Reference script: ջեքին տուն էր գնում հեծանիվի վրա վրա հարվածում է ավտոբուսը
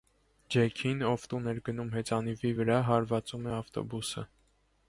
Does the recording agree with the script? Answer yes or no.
no